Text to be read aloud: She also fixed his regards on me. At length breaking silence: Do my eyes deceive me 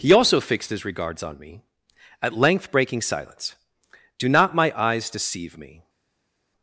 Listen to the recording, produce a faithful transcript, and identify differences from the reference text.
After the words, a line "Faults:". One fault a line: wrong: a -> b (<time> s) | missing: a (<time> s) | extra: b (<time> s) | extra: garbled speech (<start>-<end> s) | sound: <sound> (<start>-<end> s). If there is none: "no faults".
He also fixed his regards on me. At length breaking silence: Do not my eyes deceive me
Faults:
wrong: She -> He (0.0 s)
extra: not (4.3 s)